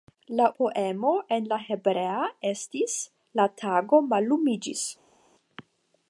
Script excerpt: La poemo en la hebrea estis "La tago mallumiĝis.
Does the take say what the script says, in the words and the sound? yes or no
yes